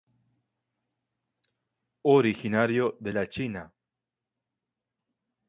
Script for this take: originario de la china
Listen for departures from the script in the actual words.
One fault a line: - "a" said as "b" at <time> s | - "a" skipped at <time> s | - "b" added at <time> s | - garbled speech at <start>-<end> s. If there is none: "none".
none